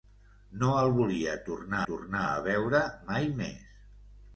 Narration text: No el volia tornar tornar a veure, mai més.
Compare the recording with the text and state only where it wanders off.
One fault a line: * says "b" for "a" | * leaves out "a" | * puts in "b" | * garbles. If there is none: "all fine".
all fine